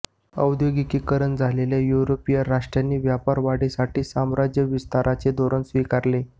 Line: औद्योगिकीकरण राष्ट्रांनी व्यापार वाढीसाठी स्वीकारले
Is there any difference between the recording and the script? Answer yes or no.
yes